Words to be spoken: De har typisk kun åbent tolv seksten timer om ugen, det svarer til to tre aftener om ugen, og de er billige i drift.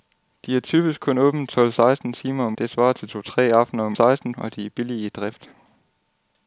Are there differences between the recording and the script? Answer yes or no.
yes